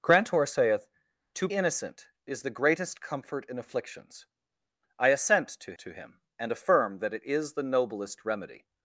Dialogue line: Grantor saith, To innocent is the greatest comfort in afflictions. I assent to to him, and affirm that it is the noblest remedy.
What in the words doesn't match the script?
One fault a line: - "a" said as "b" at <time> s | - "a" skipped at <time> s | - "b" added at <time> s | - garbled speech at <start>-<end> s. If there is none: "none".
none